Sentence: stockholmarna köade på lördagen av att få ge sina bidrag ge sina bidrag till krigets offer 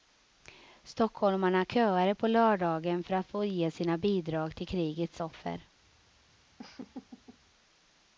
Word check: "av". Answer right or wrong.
wrong